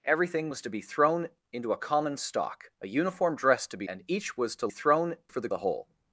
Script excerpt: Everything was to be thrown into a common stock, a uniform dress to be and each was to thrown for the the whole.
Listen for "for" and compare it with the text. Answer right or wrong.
right